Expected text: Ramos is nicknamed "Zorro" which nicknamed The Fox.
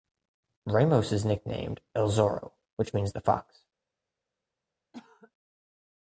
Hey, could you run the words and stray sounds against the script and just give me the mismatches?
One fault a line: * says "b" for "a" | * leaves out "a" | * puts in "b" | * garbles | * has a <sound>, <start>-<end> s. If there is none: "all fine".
* puts in "El"
* says "means" for "nicknamed"
* has a cough, 4.9-5.3 s